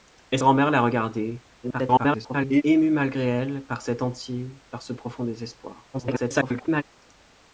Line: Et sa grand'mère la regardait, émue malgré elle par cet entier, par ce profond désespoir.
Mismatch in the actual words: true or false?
true